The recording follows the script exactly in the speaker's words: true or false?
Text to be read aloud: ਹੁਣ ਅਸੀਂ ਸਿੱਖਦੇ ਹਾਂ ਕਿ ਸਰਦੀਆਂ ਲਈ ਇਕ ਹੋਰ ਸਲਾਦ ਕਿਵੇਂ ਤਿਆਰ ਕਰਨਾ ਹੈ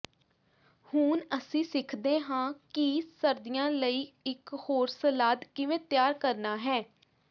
true